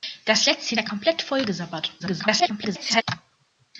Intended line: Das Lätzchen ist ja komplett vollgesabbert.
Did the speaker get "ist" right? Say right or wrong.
wrong